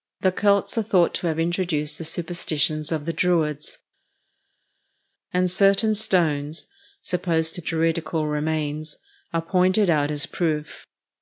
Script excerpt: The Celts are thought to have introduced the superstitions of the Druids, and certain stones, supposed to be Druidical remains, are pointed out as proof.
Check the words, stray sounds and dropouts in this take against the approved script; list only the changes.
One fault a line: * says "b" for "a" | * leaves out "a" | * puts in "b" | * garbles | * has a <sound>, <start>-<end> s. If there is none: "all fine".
* leaves out "be"